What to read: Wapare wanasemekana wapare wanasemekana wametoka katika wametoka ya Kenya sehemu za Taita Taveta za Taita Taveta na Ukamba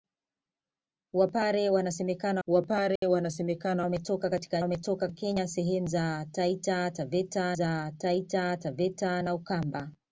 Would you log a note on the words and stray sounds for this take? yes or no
yes